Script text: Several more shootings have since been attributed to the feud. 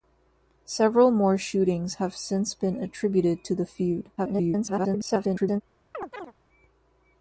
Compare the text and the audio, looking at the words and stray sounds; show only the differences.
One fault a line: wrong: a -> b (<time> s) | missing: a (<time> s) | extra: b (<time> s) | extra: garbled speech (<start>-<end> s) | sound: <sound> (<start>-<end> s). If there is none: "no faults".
extra: garbled speech (4.2-5.6 s)
sound: chirp (5.9-6.3 s)